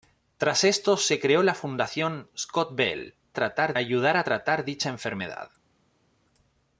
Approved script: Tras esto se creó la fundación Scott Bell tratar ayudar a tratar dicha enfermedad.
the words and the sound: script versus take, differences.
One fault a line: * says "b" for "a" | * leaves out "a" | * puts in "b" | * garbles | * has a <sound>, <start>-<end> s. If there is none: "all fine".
all fine